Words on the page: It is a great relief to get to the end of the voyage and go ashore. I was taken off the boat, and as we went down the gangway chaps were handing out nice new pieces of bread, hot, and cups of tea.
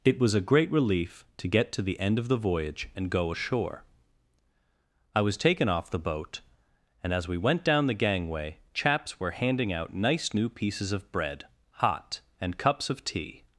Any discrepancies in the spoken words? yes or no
yes